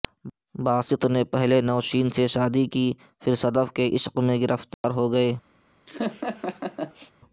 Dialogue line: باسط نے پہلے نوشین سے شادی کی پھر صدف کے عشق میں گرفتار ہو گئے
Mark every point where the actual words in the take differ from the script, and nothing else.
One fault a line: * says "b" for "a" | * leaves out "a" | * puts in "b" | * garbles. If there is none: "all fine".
all fine